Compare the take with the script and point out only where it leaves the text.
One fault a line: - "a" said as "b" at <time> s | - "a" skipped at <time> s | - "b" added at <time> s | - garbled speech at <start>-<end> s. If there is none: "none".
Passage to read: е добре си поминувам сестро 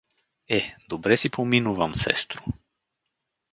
none